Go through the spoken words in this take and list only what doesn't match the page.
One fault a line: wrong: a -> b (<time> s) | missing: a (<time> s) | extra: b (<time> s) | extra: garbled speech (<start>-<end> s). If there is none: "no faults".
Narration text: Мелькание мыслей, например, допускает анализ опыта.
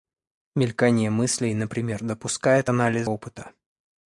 no faults